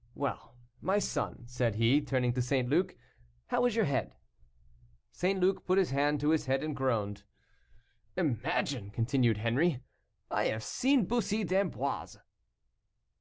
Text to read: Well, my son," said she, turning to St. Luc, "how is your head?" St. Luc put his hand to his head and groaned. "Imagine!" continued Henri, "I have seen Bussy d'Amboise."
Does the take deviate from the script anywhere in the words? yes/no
yes